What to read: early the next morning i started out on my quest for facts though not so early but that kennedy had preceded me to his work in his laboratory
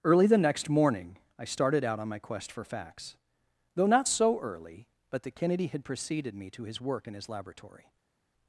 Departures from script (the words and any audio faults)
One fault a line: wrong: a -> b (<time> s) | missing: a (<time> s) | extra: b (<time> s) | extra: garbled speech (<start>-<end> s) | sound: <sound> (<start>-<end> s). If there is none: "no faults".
no faults